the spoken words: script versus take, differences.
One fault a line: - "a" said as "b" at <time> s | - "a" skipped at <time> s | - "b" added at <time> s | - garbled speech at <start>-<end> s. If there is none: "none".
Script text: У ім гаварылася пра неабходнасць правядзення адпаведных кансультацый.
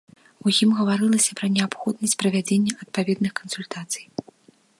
none